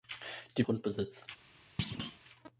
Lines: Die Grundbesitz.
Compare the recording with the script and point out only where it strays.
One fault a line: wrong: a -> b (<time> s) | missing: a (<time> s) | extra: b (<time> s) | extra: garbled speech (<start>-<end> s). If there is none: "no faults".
no faults